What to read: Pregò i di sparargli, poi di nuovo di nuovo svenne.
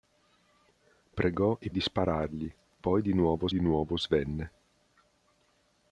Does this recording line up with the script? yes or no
yes